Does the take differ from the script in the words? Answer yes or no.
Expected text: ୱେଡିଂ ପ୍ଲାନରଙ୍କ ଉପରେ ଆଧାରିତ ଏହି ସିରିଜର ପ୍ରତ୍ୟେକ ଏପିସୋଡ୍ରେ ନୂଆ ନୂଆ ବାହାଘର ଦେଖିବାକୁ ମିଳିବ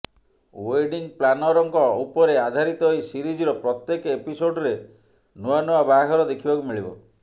no